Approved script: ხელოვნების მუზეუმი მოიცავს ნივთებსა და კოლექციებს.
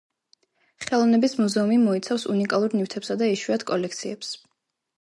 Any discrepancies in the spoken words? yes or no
yes